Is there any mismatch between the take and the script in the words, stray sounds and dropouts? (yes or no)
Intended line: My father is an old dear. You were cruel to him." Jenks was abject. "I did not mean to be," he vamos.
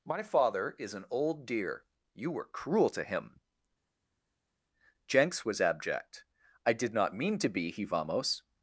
no